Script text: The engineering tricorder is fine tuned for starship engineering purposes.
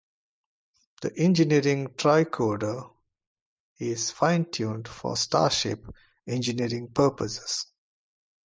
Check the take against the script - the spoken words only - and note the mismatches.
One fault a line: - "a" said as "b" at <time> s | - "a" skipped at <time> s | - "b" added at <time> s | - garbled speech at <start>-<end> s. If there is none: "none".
none